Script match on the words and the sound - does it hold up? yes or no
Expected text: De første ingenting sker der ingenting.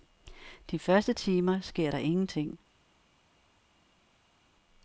no